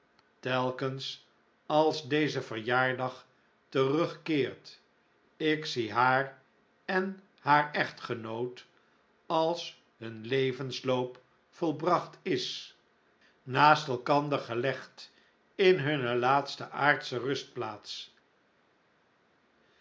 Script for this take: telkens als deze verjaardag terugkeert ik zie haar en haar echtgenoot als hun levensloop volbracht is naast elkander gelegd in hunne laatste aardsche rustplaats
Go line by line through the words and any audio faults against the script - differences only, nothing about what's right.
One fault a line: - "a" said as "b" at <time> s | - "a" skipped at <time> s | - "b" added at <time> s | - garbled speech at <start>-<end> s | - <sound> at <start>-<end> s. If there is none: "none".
none